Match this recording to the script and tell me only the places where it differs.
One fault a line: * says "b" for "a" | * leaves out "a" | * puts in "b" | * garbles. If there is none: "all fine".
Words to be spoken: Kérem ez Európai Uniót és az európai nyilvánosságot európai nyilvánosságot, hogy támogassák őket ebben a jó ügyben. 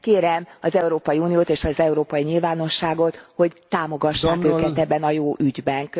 * says "az" for "ez"
* leaves out "európai nyilvánosságot"